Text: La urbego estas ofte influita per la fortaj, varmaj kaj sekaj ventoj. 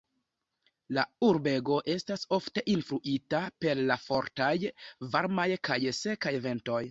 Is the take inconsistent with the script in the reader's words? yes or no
no